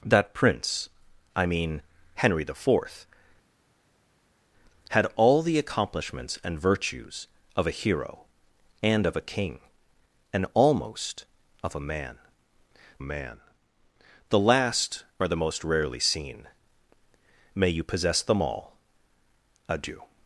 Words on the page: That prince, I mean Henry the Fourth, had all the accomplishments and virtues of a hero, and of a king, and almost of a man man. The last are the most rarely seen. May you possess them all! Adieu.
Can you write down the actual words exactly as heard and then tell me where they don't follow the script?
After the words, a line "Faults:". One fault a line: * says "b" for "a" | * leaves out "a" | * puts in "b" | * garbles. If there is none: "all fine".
That prince, I mean Henry the Fourth, had all the accomplishments and virtues of a hero, and of a king, and almost of a man man. The last are the most rarely seen. May you possess them all! Adieu.
Faults:
all fine